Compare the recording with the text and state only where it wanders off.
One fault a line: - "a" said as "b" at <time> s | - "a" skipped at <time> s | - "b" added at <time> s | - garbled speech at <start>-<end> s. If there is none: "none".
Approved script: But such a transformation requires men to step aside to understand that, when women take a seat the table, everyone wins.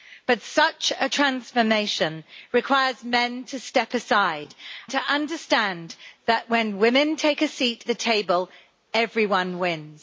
none